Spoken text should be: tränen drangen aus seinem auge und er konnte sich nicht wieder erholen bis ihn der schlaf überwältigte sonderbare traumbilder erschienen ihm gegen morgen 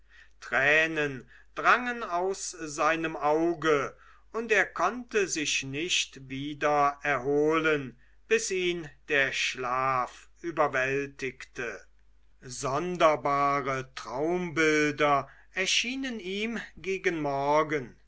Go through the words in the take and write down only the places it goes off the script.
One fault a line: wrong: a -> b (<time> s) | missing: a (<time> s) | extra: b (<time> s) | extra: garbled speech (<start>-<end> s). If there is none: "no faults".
no faults